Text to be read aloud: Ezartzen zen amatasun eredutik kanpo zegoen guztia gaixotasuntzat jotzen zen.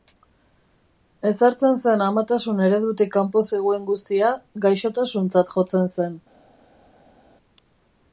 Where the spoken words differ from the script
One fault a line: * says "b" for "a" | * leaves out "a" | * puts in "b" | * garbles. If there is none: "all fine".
all fine